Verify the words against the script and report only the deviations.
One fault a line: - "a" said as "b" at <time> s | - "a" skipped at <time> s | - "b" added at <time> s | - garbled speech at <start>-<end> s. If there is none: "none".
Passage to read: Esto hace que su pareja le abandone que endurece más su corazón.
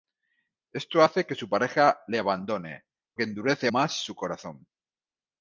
none